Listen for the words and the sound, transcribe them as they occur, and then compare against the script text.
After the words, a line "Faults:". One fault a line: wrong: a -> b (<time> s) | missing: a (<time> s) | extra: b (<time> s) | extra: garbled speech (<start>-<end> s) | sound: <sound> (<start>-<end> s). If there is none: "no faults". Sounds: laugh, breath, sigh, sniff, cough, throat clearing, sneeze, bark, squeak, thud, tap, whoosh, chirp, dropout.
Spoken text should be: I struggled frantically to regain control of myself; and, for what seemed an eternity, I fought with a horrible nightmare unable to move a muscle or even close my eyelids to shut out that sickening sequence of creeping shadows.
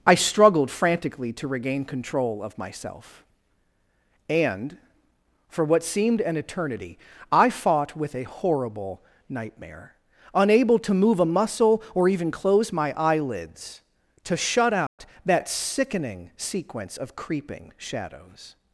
I struggled frantically to regain control of myself; and, for what seemed an eternity, I fought with a horrible nightmare unable to move a muscle or even close my eyelids to shut out that sickening sequence of creeping shadows.
Faults:
sound: dropout (14.9-15.0 s)